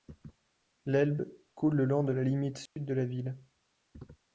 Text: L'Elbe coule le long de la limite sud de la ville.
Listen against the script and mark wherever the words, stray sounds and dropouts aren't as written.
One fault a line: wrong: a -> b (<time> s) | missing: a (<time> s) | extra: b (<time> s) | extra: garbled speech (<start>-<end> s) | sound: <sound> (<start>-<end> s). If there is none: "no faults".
sound: dropout (2.7-2.8 s)